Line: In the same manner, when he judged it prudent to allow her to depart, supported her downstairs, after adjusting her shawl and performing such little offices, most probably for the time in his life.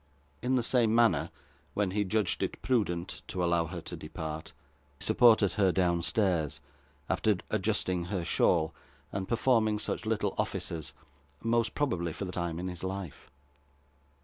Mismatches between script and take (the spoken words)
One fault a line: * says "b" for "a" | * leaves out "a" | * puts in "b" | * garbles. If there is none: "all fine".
all fine